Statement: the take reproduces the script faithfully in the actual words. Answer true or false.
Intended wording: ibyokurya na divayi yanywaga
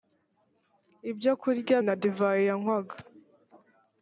true